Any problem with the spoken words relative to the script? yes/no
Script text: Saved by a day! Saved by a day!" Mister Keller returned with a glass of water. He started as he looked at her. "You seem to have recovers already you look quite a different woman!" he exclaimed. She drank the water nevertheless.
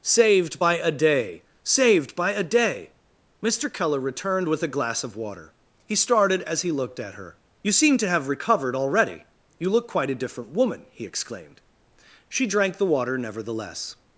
yes